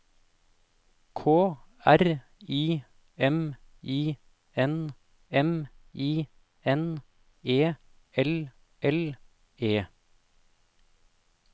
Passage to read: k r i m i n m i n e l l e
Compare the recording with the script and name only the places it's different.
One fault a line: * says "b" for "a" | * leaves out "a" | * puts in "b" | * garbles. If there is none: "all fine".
all fine